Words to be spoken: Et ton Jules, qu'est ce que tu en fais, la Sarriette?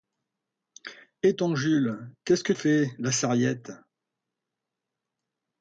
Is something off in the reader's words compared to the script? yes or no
yes